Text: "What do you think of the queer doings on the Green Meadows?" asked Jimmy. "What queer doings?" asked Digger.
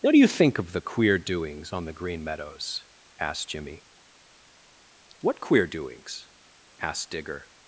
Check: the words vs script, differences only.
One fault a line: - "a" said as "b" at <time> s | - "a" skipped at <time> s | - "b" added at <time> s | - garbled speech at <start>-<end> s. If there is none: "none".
none